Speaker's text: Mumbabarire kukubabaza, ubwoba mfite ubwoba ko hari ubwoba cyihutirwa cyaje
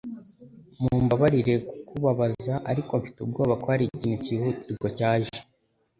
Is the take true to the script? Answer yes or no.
no